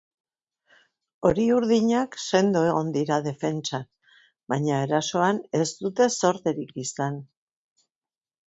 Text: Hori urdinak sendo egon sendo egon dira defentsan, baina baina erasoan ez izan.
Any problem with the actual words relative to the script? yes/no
yes